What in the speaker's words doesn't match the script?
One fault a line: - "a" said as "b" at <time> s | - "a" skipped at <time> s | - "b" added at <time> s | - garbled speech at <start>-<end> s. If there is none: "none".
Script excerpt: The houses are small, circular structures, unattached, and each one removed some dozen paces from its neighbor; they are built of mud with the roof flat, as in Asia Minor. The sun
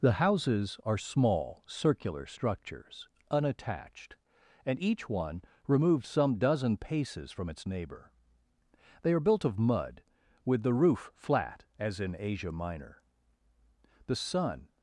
none